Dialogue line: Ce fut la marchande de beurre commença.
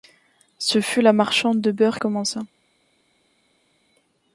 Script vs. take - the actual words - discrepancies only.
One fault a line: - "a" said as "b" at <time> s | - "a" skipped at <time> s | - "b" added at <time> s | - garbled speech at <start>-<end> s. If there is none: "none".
none